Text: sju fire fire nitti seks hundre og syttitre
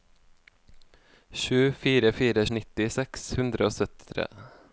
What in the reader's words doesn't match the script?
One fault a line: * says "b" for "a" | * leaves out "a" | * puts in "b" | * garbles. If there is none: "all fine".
all fine